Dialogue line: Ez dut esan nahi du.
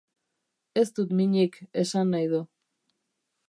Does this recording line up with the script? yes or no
no